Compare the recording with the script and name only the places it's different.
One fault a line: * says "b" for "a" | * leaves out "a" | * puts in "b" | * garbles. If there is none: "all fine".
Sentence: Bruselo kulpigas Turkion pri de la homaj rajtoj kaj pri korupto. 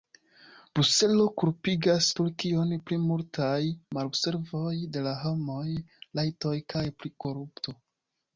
* puts in "multaj malobservoj"